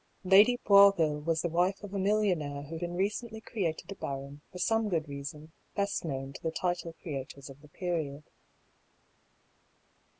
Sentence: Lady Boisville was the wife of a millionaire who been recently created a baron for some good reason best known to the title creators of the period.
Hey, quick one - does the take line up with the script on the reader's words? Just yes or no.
yes